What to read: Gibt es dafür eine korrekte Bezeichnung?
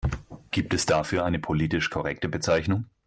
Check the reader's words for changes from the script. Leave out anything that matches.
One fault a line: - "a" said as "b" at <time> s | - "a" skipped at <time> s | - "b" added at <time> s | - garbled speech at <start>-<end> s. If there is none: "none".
- "politisch" added at 1.4 s